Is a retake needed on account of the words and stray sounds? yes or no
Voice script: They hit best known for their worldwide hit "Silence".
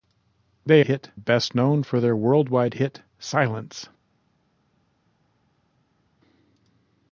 no